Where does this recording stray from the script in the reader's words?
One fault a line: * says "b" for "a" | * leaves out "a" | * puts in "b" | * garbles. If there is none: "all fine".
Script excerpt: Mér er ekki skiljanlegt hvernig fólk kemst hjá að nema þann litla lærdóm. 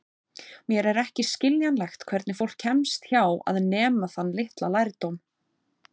all fine